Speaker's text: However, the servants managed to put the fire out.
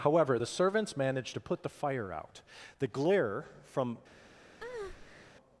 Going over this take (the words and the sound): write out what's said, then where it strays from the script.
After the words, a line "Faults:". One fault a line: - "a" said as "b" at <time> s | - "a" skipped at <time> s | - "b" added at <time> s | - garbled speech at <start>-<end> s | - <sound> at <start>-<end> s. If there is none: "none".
However, the servants managed to put the fire out. The glare from
Faults:
- "The glare from" added at 2.8 s
- breath at 4.6-5.3 s